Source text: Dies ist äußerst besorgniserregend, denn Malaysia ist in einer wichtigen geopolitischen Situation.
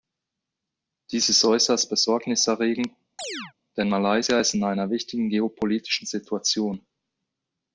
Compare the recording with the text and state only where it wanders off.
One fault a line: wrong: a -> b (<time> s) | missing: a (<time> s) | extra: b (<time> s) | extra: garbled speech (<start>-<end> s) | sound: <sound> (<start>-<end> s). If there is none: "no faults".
sound: chirp (3.2-3.5 s)